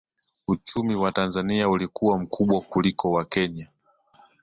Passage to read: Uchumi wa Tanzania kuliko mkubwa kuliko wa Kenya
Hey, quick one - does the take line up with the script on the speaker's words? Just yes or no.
no